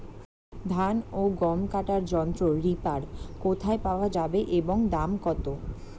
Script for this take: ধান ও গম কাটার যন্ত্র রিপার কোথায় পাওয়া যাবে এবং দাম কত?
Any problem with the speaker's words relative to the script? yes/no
no